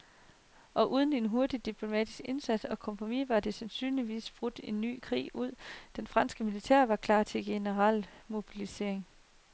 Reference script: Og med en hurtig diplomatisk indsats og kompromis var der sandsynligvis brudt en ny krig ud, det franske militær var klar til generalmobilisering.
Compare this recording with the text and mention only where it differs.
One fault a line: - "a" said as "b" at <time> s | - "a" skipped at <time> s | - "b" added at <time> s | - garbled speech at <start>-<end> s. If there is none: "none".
- "med" said as "uden" at 0.9 s